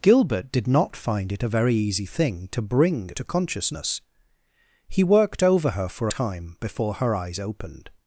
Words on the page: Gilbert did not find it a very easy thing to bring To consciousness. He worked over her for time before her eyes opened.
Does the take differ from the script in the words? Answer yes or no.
no